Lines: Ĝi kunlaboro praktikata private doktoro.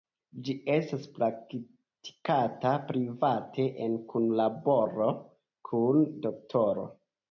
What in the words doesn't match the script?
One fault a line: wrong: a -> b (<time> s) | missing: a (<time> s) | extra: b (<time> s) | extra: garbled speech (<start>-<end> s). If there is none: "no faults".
wrong: kunlaboro -> estas (0.8 s)
extra: en kunlaboro kun (3.9 s)